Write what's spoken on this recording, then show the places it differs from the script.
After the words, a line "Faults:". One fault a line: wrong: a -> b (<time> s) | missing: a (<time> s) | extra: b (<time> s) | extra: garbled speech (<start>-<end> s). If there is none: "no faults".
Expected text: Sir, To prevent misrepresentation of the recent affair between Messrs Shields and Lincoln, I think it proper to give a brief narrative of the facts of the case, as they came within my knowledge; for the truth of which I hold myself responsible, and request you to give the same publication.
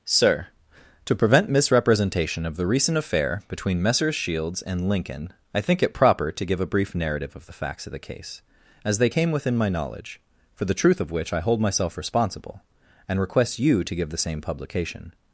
Sir, To prevent misrepresentation of the recent affair between Messrs Shields and Lincoln, I think it proper to give a brief narrative of the facts of the case, as they came within my knowledge; for the truth of which I hold myself responsible, and request you to give the same publication.
Faults:
no faults